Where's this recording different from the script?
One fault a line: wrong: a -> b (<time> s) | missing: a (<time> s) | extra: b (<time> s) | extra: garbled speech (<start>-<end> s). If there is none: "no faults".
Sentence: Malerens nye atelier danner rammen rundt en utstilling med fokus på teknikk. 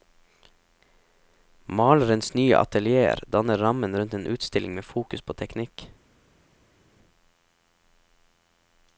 no faults